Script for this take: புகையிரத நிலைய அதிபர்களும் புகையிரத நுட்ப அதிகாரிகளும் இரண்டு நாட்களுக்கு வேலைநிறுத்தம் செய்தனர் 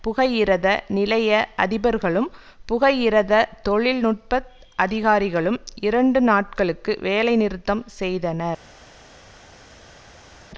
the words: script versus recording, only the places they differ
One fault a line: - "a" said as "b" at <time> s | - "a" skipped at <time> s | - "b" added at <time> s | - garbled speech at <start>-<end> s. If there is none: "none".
- "தொழில்" added at 3.6 s